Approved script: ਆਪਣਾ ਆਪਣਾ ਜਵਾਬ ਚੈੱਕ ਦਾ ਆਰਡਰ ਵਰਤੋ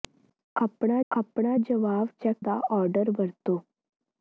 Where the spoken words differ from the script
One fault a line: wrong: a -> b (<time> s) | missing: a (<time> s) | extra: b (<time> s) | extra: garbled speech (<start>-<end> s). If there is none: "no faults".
no faults